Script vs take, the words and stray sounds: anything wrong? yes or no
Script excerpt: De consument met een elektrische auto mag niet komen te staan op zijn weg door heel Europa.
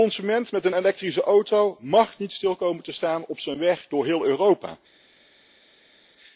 yes